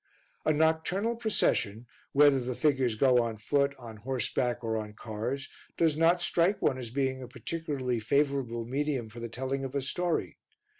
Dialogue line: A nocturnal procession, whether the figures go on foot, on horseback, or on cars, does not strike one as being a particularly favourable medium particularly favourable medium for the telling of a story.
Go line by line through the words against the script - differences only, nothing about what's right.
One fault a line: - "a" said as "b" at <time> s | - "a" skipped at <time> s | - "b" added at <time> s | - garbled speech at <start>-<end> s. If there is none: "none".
- "particularly favourable medium" skipped at 9.1 s